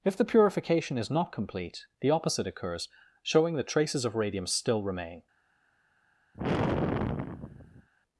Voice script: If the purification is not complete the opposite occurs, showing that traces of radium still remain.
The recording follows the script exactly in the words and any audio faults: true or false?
false